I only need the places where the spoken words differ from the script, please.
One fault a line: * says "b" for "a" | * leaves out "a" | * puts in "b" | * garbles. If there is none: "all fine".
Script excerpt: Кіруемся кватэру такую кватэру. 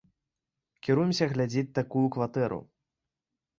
* says "глядзець" for "кватэру"